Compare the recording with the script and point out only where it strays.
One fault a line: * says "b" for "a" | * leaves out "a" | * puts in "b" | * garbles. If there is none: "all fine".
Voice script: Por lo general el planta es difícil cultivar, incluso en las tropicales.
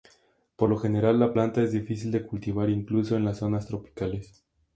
* says "la" for "el"
* puts in "de"
* puts in "zonas"